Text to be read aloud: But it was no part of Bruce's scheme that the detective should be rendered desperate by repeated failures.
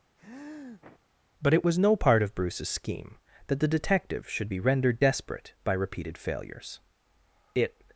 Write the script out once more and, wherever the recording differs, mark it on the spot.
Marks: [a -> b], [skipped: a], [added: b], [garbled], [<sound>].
[sniff] But it was no part of Bruce's scheme that the detective should be rendered desperate by repeated failures. [added: It]